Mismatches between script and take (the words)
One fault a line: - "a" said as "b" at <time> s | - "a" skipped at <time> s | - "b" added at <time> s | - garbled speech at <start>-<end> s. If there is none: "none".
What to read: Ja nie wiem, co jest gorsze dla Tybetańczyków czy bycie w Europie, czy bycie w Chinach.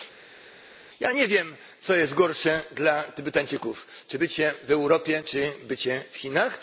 none